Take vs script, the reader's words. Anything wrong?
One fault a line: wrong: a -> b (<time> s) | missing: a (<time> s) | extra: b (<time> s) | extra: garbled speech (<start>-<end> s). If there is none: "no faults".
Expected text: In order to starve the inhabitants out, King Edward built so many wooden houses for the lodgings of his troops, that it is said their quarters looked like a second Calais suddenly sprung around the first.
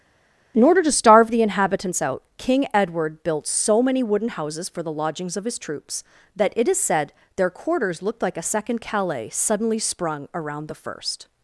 no faults